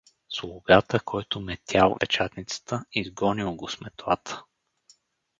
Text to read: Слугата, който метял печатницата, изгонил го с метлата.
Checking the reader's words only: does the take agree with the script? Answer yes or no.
yes